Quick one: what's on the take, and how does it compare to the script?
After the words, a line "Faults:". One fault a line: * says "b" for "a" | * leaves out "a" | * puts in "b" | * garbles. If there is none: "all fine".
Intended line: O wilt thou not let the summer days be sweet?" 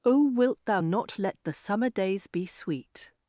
O wilt thou not let the summer days be sweet?"
Faults:
all fine